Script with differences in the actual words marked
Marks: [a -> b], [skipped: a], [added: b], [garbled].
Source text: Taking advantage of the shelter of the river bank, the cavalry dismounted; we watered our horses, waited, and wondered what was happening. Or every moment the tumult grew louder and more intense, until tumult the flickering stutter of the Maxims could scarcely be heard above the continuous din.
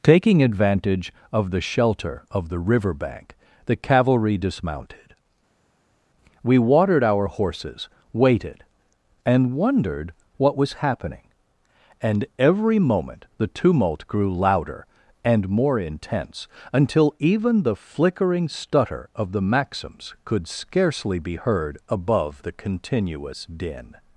Taking advantage of the shelter of the river bank, the cavalry dismounted; we watered our horses, waited, and wondered what was happening. [Or -> And] every moment the tumult grew louder and more intense, until [tumult -> even] the flickering stutter of the Maxims could scarcely be heard above the continuous din.